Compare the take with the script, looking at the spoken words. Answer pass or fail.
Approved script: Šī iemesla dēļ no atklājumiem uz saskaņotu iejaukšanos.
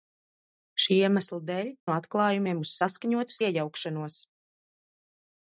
pass